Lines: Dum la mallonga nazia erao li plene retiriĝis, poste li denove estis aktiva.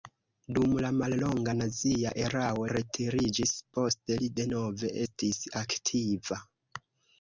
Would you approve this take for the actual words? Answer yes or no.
no